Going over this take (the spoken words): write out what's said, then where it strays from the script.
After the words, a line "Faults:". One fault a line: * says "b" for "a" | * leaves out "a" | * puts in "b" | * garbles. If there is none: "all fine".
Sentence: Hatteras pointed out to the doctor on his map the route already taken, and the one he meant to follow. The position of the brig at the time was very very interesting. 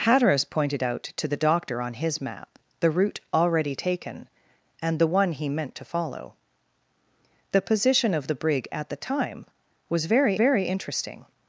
Hatteras pointed out to the doctor on his map the route already taken, and the one he meant to follow. The position of the brig at the time was very very interesting.
Faults:
all fine